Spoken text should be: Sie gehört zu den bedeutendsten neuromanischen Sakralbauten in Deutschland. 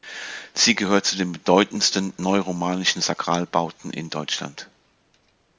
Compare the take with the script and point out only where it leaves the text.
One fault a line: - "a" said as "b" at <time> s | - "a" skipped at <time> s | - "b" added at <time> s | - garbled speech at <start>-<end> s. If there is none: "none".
none